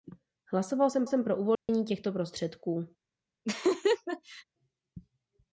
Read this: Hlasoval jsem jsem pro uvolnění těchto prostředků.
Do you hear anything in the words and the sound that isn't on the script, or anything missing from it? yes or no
yes